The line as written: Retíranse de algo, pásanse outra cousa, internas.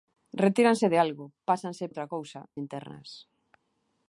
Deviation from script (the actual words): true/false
false